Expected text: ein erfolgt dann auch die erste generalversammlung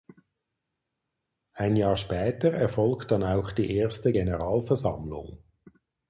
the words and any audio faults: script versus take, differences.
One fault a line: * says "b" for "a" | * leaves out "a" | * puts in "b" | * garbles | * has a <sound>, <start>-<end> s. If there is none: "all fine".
* puts in "jahr später"